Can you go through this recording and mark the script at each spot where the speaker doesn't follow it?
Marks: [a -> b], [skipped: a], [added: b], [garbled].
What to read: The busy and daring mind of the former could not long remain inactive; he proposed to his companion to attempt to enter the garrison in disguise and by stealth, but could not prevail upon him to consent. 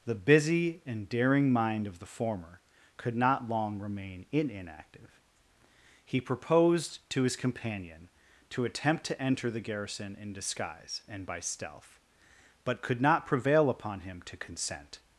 The busy and daring mind of the former could not long remain inactive; he proposed to his companion to attempt to enter the garrison in disguise and by stealth, but could not prevail upon him to consent.